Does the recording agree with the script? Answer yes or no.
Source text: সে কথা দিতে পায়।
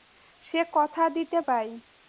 yes